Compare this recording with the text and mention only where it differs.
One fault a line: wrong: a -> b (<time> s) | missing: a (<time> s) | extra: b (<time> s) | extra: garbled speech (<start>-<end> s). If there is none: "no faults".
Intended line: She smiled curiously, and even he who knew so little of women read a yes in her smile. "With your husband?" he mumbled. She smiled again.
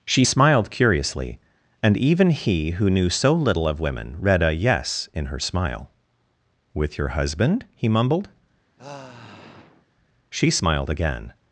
no faults